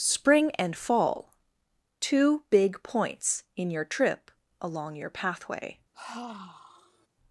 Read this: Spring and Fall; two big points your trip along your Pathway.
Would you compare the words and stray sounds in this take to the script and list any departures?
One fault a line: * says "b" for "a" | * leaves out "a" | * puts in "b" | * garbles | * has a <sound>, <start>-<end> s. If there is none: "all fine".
* puts in "in"
* has a sigh, 5.9-7.1 s